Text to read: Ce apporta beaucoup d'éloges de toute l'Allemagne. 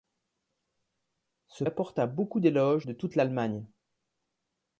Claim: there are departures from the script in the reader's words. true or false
false